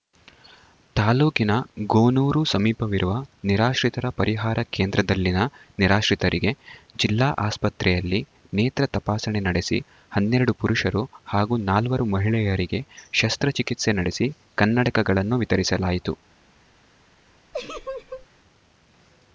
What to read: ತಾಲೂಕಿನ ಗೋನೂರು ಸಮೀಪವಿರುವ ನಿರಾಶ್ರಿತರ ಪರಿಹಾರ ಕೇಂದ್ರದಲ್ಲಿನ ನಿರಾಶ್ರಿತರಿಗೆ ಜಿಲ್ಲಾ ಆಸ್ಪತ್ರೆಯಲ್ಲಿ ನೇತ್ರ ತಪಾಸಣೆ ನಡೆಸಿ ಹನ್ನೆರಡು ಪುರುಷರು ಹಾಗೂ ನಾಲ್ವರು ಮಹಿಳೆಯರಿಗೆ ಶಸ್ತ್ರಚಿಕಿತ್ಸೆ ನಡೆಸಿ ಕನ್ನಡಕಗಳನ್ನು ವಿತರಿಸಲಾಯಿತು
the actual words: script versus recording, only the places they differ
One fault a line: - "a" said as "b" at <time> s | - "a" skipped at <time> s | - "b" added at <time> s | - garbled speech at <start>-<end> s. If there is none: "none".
none